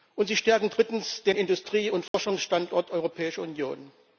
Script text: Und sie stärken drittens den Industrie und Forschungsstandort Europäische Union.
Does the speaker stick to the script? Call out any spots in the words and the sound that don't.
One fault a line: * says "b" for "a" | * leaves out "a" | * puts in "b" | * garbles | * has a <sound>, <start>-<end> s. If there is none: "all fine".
* has a dropout, 2.1-2.1 s